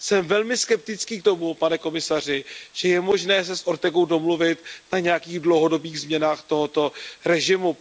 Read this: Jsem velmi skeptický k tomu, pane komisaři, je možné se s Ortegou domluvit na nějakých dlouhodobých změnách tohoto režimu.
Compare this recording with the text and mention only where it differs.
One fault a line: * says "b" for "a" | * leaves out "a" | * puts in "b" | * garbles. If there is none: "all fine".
* puts in "že"